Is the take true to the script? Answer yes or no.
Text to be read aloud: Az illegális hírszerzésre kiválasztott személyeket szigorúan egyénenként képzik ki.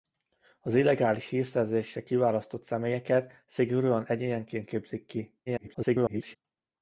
no